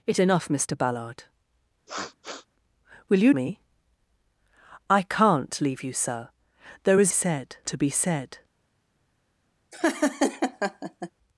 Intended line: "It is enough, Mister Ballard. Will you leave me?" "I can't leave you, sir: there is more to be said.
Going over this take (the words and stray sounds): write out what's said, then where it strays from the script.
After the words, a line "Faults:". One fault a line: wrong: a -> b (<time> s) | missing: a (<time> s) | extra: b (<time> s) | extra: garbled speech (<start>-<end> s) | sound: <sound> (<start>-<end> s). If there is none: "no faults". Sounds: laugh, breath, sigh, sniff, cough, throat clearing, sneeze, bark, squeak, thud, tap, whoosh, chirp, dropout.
"It enough, Mister Ballard. Will you me?" "I can't leave you, sir: there is said to be said.
Faults:
missing: is (0.2 s)
sound: sniff (1.9-2.5 s)
missing: leave (3.3 s)
wrong: more -> said (7.1 s)
sound: laugh (9.7-11.1 s)